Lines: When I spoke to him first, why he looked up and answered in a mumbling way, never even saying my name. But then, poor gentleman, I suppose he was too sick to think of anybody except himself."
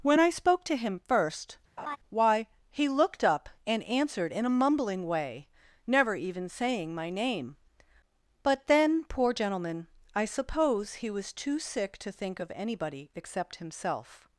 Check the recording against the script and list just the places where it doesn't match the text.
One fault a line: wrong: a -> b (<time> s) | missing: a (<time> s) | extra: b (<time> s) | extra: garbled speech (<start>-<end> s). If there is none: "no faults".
no faults